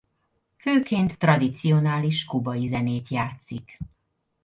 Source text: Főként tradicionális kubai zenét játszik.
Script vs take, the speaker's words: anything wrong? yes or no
no